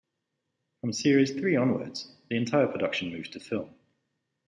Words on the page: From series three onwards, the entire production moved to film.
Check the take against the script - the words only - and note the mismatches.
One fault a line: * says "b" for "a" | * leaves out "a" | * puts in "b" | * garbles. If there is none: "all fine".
all fine